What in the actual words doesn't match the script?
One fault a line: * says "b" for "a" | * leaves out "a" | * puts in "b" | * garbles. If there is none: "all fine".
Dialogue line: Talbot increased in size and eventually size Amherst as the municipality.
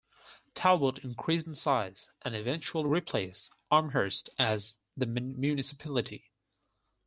* says "replaced" for "size"